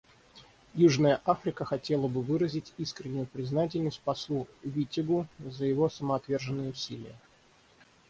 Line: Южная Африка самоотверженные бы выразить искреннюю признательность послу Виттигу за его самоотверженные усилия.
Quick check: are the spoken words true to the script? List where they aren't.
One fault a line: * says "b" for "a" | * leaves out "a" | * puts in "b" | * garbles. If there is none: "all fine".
* says "хотела" for "самоотверженные"